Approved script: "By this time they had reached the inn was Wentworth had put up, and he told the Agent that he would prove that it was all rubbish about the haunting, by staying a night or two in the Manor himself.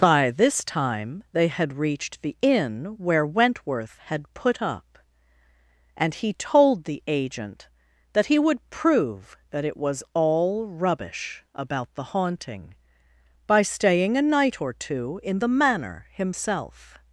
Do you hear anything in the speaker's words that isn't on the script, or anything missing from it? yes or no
yes